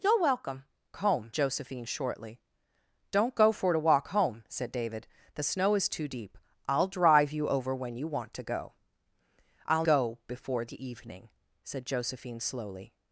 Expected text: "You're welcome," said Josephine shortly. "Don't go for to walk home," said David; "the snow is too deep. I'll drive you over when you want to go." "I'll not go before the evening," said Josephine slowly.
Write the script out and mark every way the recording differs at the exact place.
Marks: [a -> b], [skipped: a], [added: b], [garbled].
"You're welcome," [said -> home] Josephine shortly. "Don't go for to walk home," said David; "the snow is too deep. I'll drive you over when you want to go." "I'll [skipped: not] go before the evening," said Josephine slowly.